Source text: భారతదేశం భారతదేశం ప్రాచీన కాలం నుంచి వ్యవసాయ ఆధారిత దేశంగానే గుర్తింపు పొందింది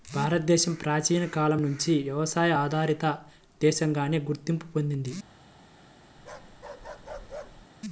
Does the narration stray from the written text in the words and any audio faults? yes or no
yes